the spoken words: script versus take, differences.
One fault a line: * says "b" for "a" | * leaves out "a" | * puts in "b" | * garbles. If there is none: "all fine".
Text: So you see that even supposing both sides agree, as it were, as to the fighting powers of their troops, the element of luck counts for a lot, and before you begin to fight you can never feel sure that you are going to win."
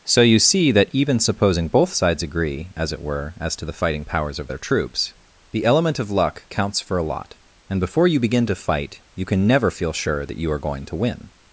all fine